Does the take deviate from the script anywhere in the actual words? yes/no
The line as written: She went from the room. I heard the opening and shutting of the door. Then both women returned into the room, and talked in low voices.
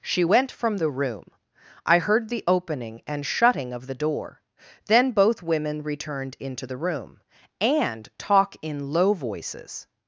yes